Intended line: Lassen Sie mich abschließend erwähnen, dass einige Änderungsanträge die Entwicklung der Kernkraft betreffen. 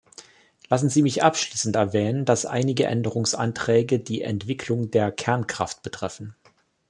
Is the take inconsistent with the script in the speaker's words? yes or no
no